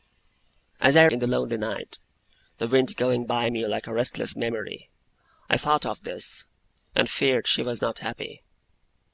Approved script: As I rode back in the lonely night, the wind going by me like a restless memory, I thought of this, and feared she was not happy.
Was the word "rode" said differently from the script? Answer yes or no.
yes